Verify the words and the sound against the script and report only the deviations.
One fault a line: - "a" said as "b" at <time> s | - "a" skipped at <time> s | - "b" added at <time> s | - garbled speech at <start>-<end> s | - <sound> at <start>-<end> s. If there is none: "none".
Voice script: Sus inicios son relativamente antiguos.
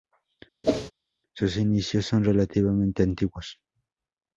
- whoosh at 0.6-0.9 s